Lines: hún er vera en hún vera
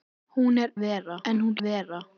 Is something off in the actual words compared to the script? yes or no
no